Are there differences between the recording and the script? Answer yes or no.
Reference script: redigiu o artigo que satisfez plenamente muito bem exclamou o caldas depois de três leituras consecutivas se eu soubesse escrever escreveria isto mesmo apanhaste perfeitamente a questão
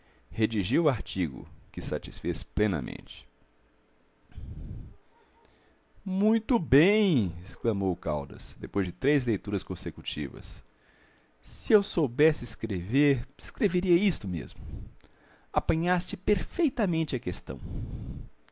no